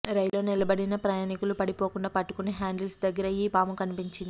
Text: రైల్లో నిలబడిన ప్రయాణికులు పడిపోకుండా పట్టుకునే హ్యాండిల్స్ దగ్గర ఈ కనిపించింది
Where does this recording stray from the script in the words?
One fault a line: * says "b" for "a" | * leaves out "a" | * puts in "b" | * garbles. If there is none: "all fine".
* puts in "పాము"